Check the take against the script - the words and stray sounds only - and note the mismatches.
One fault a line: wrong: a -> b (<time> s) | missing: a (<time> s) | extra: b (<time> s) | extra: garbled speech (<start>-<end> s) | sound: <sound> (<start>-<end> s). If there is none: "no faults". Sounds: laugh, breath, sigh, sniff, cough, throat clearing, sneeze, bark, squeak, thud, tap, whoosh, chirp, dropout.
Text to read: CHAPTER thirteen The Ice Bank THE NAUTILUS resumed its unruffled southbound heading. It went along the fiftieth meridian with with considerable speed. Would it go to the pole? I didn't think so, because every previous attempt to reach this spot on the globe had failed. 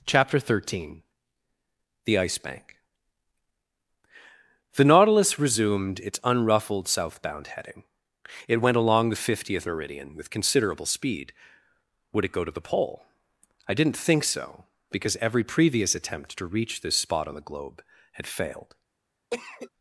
missing: with (10.3 s)
sound: cough (19.3-19.7 s)